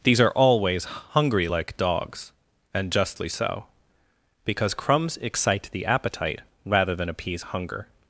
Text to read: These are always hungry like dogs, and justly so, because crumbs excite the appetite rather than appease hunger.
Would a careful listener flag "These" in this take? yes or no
no